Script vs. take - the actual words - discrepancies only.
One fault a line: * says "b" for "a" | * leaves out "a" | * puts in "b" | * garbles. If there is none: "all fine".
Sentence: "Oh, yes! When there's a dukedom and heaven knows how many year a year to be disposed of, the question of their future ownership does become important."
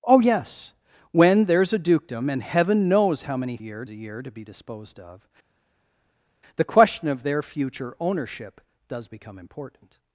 all fine